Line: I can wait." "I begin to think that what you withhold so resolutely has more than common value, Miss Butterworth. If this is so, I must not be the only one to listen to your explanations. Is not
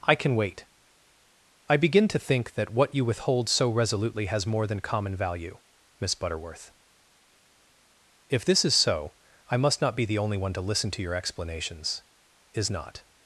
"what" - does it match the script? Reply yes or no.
yes